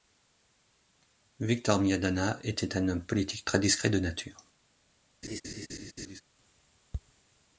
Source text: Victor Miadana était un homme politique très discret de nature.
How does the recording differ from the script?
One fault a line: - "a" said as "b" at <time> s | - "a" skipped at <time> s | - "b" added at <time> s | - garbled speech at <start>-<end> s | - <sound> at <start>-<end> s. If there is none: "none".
- laugh at 5.2-6.2 s